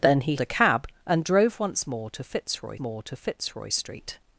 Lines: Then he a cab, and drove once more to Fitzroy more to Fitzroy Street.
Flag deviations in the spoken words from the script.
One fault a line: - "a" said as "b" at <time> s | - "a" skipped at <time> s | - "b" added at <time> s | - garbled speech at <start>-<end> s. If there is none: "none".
none